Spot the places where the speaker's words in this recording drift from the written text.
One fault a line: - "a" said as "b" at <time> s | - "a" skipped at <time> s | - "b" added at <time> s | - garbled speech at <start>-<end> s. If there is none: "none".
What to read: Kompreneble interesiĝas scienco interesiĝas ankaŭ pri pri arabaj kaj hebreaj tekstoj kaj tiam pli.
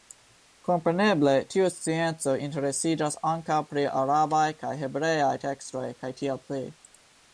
- "interesiĝas" said as "tiu" at 1.5 s
- "pri" skipped at 3.8 s
- "tiam" said as "tiel" at 6.2 s